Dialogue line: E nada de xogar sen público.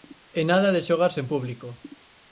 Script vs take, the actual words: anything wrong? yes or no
no